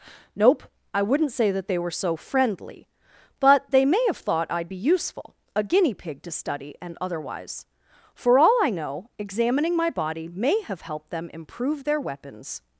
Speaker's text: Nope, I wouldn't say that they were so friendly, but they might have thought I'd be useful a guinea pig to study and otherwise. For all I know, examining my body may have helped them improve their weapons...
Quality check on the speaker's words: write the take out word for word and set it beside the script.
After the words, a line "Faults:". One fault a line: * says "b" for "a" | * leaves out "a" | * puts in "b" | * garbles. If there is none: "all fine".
Nope, I wouldn't say that they were so friendly, but they may have thought I'd be useful a guinea pig to study and otherwise. For all I know, examining my body may have helped them improve their weapons...
Faults:
* says "may" for "might"